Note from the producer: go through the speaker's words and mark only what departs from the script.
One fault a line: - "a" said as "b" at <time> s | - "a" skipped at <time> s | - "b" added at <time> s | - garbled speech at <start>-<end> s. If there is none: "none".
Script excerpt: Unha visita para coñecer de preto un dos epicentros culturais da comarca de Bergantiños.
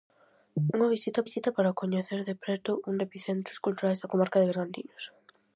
- "visita" added at 1.3 s
- "dos" skipped at 2.9 s